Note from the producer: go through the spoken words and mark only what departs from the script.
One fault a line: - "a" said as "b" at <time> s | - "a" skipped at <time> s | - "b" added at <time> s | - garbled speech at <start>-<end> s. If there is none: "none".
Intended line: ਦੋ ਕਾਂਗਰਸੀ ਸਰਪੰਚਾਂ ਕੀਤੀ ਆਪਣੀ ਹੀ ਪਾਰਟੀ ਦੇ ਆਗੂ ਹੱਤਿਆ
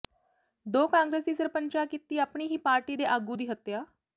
- "ਦੀ" added at 3.3 s